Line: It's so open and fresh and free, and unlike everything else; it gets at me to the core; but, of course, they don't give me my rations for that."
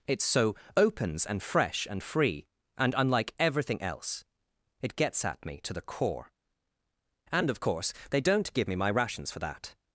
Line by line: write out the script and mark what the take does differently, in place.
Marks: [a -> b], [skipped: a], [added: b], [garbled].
It's so [open -> opens] and fresh and free, and unlike everything else; it gets at me to the core; [but, -> and] of course, they don't give me my rations for that."